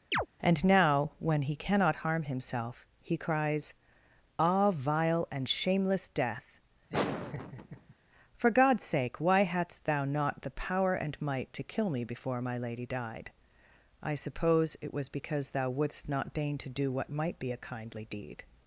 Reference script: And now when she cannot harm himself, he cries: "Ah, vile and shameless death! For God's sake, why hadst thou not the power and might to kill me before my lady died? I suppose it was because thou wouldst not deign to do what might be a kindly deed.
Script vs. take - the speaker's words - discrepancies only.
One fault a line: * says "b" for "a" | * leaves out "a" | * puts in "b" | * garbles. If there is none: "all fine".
* says "he" for "she"